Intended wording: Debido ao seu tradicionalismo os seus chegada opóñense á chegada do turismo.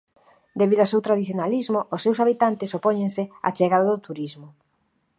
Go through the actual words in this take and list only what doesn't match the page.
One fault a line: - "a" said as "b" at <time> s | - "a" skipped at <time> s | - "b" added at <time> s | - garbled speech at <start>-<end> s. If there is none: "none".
- "chegada" said as "habitantes" at 2.2 s